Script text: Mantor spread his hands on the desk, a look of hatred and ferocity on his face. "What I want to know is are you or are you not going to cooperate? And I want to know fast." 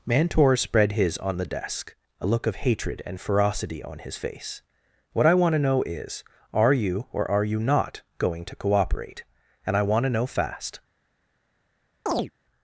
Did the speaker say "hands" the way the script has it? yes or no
no